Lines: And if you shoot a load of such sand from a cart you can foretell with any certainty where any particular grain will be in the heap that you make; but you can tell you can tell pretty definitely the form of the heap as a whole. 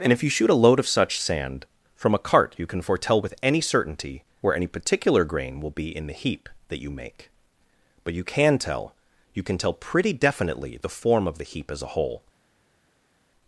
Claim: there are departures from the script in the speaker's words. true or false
false